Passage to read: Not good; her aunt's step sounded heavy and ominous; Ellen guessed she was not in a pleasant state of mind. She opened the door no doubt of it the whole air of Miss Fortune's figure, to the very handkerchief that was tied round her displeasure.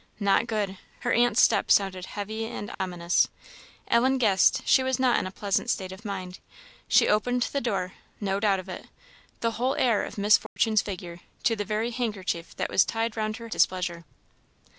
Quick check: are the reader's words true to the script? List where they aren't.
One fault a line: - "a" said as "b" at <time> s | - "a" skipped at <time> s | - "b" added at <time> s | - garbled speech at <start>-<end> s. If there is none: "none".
none